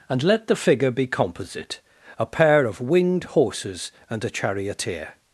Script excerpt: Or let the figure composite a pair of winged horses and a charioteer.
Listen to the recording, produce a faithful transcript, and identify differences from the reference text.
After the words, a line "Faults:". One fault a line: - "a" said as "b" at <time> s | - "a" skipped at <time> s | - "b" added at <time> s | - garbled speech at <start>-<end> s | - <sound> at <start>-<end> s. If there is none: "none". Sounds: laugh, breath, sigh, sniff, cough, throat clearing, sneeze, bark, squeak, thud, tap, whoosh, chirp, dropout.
And let the figure be composite a pair of winged horses and a charioteer.
Faults:
- "Or" said as "And" at 0.1 s
- "be" added at 0.9 s